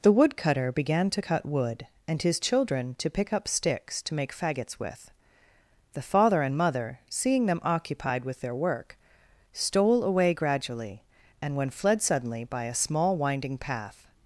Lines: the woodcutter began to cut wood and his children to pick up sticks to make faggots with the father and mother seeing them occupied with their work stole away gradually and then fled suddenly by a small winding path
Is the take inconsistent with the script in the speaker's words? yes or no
yes